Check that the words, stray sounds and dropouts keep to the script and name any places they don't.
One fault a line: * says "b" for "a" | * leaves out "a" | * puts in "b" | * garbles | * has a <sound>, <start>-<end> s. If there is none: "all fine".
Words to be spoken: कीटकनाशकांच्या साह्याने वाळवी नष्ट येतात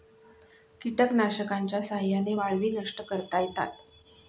* puts in "करता"